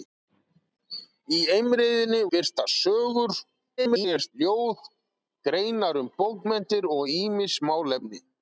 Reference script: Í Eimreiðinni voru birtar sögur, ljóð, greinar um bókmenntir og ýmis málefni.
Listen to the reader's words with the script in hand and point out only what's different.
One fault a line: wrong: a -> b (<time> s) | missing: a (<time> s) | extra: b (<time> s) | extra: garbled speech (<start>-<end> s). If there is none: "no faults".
missing: voru (2.2 s)
extra: garbled speech (3.8-4.3 s)